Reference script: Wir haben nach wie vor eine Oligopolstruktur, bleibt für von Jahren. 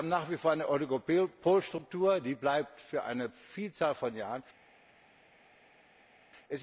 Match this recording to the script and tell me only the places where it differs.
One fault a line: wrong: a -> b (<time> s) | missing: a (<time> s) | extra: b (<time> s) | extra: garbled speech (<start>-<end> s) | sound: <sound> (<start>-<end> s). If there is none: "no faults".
extra: die (2.2 s)
extra: eine Vielzahl (3.0 s)